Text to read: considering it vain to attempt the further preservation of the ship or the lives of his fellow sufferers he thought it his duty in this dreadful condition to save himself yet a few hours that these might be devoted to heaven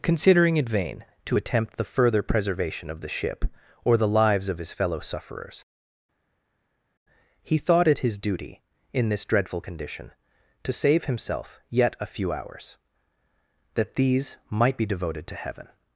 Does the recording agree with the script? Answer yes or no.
yes